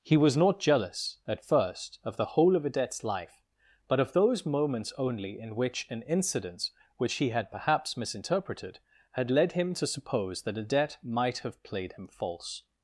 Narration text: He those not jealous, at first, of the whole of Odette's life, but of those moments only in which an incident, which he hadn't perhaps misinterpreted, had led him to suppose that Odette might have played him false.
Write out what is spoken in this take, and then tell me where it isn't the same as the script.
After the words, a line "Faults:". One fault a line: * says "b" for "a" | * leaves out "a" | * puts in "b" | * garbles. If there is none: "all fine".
He was not jealous, at first, of the whole of Odette's life, but of those moments only in which an incident, which he had perhaps misinterpreted, had led him to suppose that Odette might have played him false.
Faults:
* says "was" for "those"
* says "had" for "hadn't"